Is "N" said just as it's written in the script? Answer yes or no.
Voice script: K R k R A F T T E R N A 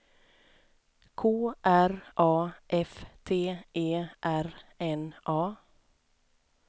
yes